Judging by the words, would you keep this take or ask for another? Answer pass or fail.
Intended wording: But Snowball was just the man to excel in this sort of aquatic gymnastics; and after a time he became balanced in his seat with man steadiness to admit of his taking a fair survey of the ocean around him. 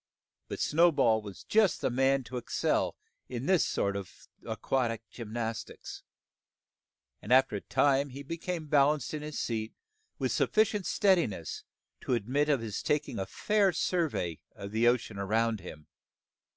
fail